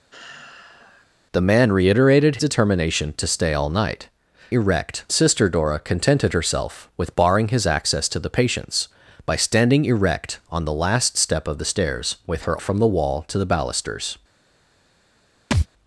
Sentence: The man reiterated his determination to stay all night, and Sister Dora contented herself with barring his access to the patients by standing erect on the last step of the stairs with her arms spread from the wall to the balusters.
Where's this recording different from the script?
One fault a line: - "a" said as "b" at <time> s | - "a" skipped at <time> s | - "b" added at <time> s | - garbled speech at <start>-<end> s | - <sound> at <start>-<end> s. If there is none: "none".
- sigh at 0.1-1.1 s
- "his" skipped at 2.4 s
- "and" said as "erect" at 4.5 s
- "arms spread" skipped at 12.6 s
- thud at 15.5-15.7 s